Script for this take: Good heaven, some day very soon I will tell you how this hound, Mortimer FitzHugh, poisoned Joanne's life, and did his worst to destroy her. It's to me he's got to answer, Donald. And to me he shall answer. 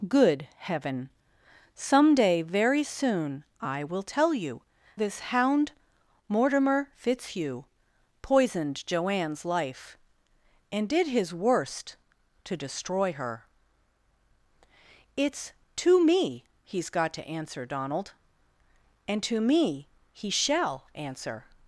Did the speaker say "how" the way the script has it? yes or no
no